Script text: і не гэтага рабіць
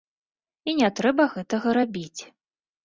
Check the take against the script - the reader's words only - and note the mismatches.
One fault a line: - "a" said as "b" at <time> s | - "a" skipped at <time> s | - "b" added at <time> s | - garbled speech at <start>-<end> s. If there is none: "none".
- "трэба" added at 1.0 s